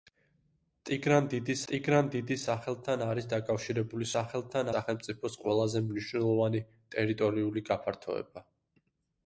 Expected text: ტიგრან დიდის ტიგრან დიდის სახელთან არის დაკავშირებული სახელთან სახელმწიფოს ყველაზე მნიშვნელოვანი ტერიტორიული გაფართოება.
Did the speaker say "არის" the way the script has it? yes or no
yes